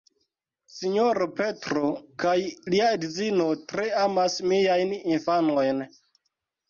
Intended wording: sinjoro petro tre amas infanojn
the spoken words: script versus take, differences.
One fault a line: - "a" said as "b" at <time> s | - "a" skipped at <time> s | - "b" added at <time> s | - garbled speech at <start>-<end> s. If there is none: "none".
- "kaj lia edzino" added at 2.2 s
- "miajn" added at 4.5 s